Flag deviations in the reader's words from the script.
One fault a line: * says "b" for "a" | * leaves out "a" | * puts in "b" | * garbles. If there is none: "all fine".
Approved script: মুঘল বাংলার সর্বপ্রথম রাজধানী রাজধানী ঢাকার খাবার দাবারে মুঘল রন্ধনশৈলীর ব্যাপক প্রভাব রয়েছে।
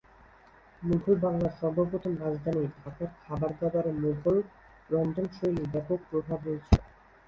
* leaves out "রাজধানী"